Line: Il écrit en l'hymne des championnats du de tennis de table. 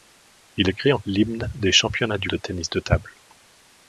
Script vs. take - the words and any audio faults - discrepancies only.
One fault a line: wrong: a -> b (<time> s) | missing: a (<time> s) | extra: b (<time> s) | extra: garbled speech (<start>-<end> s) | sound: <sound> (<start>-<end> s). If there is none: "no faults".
no faults